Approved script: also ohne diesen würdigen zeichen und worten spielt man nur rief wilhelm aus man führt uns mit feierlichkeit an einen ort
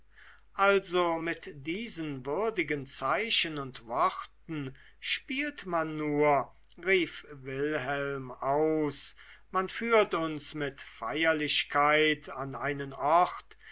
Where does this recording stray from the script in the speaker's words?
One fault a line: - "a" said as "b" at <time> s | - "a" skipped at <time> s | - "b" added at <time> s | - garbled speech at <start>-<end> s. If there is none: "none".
- "ohne" said as "mit" at 1.2 s